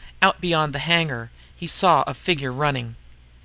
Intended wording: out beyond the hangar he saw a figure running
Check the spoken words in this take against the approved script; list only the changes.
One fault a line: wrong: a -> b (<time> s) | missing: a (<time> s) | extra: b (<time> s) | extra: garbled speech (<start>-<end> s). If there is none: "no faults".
no faults